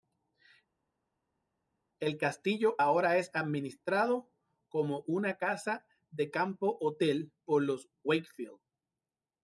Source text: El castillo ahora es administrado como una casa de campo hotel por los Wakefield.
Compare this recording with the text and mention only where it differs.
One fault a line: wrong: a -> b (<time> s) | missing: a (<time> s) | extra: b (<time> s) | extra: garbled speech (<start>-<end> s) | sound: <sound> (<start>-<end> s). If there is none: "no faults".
no faults